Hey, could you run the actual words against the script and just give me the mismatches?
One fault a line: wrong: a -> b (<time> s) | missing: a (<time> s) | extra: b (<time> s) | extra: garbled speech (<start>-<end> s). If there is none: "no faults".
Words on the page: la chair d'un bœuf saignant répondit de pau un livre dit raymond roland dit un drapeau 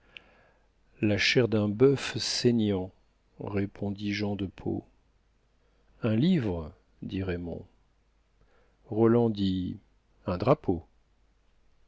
extra: jean (4.1 s)